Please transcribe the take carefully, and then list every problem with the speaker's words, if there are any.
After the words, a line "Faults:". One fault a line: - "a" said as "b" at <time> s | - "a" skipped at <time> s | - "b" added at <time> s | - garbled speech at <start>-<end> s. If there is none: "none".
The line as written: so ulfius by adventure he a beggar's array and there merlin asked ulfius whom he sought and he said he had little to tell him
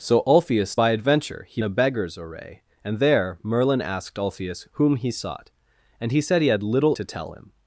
so ulfius by adventure he a beggar's array and there merlin asked ulfius whom he sought and he said he had little to tell him
Faults:
none